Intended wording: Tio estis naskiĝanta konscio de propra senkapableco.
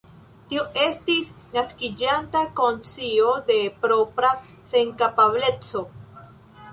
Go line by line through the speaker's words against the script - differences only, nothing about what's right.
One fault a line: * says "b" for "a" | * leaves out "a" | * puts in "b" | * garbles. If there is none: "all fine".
all fine